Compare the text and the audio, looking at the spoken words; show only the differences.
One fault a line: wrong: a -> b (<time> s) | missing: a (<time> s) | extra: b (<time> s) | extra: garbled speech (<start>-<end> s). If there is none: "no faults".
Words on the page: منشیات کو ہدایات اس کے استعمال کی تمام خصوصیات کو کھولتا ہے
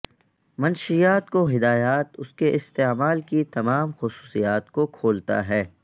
no faults